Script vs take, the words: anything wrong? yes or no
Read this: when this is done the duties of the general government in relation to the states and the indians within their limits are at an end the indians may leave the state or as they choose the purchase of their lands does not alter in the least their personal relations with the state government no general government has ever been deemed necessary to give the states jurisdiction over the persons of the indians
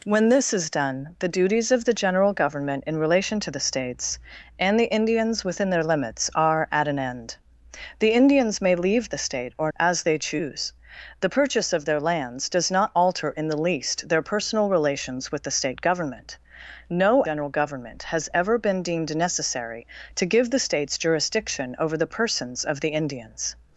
no